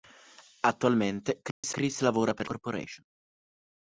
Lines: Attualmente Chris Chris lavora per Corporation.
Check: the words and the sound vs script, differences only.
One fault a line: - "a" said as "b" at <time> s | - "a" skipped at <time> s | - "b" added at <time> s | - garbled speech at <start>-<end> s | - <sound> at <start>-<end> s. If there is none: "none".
- dropout at 1.5-1.6 s